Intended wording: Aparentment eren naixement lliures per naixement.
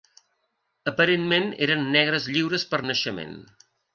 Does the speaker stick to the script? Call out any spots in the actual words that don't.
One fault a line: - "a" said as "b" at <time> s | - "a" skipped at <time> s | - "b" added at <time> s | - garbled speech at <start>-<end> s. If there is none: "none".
- "naixement" said as "negres" at 2.0 s